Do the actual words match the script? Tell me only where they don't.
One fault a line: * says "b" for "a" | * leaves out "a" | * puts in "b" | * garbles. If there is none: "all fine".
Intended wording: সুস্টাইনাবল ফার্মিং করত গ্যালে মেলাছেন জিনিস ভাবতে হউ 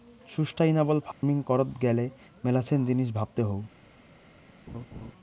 all fine